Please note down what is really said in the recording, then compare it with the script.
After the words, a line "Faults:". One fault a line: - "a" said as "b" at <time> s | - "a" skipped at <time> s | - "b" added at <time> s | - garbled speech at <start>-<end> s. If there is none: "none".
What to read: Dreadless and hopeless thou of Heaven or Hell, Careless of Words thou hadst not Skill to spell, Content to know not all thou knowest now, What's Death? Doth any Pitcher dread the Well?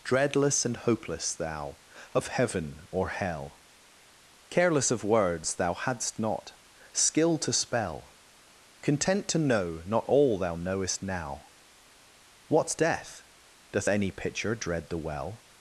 Dreadless and hopeless thou of Heaven or Hell, Careless of Words thou hadst not Skill to spell, Content to know not all thou knowest now, What's Death? Doth any Pitcher dread the Well?
Faults:
none